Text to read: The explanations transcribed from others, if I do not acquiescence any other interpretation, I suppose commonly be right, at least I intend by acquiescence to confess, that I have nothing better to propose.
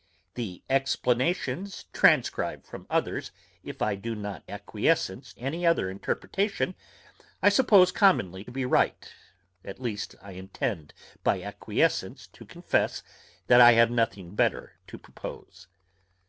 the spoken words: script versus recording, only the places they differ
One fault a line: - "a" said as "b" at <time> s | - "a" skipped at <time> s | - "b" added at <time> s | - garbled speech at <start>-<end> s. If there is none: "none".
none